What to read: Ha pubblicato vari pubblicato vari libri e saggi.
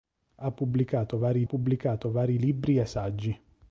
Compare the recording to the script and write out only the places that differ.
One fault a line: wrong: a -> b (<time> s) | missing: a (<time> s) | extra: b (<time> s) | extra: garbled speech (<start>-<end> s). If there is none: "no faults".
no faults